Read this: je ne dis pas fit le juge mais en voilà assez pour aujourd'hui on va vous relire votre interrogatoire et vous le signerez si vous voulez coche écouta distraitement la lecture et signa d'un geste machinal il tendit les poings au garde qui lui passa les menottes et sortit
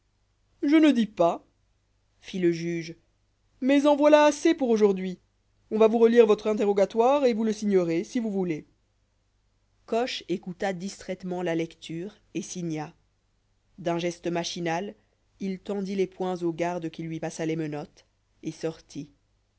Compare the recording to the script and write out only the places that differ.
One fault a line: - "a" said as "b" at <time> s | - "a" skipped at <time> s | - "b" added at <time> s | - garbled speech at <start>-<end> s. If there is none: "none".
none